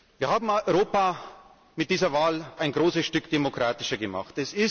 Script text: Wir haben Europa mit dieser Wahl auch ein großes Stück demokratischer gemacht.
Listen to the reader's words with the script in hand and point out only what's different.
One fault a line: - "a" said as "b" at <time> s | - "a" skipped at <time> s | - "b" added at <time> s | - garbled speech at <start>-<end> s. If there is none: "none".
- "auch" skipped at 2.5 s